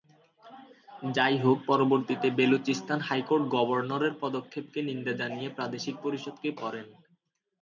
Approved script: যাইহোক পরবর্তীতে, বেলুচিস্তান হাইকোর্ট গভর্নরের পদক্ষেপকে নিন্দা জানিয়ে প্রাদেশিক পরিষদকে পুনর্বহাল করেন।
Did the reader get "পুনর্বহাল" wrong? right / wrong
wrong